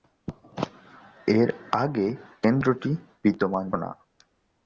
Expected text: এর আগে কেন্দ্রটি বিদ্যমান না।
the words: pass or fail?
pass